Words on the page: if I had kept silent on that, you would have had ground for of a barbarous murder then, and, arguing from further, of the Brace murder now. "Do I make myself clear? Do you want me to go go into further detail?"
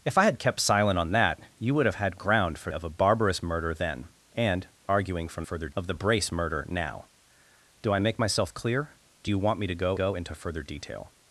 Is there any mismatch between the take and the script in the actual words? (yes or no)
no